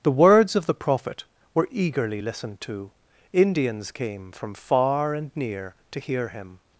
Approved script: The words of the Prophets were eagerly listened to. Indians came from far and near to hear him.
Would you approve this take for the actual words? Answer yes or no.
no